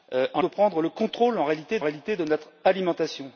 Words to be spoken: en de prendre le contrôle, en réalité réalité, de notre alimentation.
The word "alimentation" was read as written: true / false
true